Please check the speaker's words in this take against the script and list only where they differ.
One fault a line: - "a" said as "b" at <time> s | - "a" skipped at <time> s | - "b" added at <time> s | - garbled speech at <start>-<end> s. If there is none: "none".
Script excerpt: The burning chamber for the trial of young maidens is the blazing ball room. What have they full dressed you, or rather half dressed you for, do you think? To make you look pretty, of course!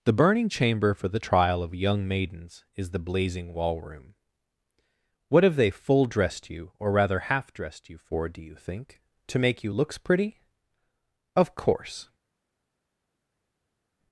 - "ball" said as "wall" at 3.5 s
- "look" said as "looks" at 9.7 s